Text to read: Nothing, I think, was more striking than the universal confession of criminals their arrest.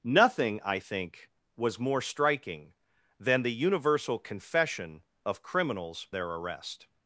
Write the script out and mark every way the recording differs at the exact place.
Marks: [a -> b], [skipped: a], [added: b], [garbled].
Nothing, I think, was more striking than the universal confession of criminals their arrest.